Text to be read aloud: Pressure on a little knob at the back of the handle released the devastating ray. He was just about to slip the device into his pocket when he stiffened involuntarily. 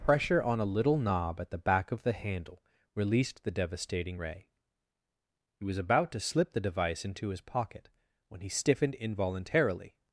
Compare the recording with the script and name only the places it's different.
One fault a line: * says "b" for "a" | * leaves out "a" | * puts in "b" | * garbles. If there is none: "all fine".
* leaves out "just"